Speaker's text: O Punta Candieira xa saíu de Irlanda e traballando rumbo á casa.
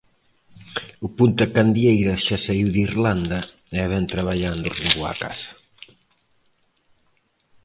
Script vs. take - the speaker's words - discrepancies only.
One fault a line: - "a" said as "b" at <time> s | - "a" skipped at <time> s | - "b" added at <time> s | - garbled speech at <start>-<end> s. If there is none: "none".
- "vén" added at 3.9 s